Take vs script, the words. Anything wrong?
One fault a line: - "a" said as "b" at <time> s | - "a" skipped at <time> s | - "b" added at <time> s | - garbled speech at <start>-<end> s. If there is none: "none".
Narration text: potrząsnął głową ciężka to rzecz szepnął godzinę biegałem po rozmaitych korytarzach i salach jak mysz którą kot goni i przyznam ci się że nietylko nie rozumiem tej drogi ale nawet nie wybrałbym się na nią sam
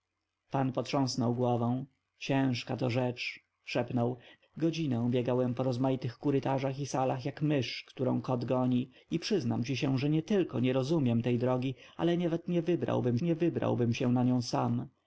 - "nie wybrałbym" added at 13.2 s